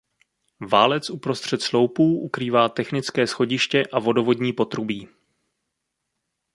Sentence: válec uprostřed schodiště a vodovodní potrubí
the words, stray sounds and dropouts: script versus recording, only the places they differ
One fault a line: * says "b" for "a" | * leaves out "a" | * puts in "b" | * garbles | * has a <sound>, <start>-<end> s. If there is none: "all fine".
* puts in "sloupů ukrývá technické"